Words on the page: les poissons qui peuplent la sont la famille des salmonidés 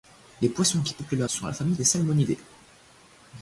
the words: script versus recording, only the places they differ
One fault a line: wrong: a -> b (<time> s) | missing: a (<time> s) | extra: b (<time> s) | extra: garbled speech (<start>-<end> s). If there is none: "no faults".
no faults